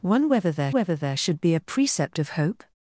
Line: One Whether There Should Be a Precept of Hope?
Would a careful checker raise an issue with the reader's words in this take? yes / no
yes